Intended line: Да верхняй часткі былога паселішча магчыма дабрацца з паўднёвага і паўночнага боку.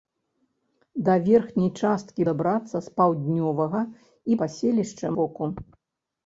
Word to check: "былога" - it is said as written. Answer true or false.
false